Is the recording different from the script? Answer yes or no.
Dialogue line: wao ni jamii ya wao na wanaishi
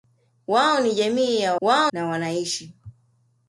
no